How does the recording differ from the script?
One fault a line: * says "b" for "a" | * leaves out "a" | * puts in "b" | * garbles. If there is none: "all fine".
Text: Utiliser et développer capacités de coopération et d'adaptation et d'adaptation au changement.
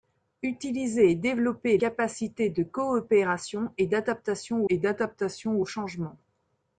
all fine